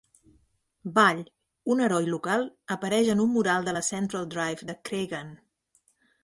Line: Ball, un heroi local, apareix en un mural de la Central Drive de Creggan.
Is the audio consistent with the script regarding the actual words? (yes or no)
yes